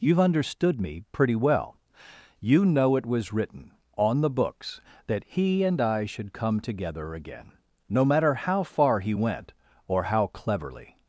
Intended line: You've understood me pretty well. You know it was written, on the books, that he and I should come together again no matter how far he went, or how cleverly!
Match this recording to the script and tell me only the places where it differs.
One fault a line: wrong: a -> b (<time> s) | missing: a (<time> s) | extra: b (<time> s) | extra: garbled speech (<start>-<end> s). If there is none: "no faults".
no faults